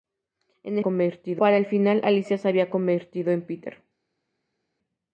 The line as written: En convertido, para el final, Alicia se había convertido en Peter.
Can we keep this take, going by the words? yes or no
yes